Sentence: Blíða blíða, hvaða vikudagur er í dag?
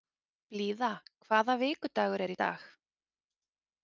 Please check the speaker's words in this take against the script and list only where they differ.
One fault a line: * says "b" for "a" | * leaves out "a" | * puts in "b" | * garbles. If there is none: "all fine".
* leaves out "blíða"